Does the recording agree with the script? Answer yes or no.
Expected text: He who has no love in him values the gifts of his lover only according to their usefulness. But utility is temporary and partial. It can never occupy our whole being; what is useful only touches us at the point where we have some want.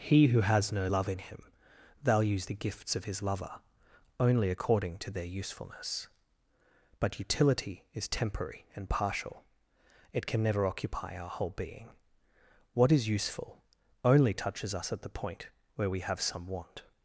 yes